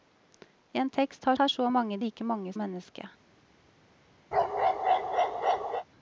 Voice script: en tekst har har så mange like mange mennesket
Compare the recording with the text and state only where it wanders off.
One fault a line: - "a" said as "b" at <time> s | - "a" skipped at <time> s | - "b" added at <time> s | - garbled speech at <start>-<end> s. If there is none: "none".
none